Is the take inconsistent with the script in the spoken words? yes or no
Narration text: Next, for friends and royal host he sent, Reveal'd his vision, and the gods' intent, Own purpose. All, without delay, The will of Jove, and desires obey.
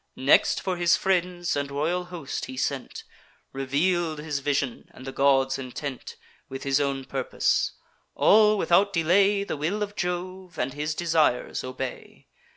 yes